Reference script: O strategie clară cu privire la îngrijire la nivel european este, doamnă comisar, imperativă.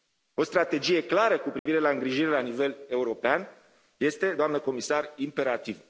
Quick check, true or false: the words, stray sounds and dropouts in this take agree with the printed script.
false